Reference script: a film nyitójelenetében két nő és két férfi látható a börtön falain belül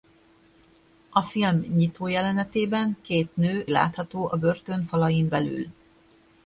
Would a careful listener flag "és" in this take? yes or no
yes